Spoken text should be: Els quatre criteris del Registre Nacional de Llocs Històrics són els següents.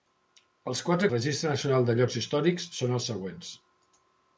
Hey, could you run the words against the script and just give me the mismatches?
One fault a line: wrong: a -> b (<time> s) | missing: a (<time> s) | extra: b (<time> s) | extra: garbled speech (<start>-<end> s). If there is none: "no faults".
missing: criteris del (1.1 s)